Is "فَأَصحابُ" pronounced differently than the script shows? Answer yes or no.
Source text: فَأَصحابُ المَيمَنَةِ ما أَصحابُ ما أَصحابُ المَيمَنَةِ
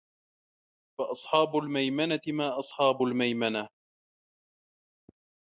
no